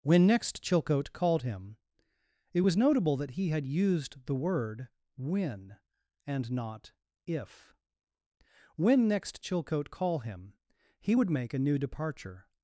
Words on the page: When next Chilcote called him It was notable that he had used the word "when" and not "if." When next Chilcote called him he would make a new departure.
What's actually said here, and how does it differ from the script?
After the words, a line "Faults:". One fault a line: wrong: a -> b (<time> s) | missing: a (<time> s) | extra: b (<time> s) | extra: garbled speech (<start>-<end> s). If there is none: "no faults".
When next Chilcote called him It was notable that he had used the word "when" and not "if." When next Chilcote call him he would make a new departure.
Faults:
wrong: called -> call (9.9 s)